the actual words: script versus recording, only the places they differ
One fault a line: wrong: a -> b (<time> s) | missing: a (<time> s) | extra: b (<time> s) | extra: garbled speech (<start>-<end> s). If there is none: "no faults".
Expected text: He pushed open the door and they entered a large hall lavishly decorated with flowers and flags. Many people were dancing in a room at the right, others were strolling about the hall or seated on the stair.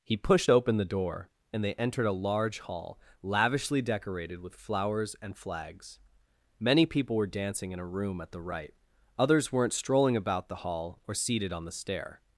wrong: were -> weren't (9.5 s)